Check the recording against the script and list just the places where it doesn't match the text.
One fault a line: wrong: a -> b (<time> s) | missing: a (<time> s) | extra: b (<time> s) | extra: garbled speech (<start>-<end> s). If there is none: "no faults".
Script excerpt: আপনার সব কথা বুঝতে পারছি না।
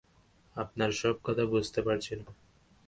no faults